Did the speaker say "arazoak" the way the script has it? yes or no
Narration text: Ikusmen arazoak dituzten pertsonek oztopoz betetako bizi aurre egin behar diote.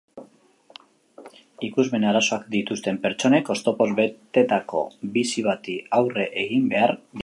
yes